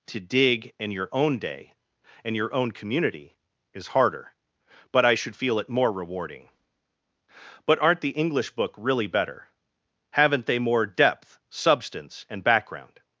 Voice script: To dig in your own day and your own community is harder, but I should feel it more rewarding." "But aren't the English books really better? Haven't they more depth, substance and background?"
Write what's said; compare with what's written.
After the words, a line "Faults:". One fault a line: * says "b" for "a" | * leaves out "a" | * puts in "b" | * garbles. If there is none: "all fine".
To dig in your own day and your own community is harder, but I should feel it more rewarding." "But aren't the English book really better? Haven't they more depth, substance and background?"
Faults:
* says "book" for "books"